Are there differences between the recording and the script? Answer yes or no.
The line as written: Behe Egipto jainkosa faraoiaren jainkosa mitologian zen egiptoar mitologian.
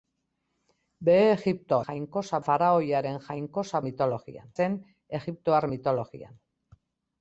no